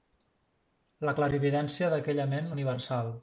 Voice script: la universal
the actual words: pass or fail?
fail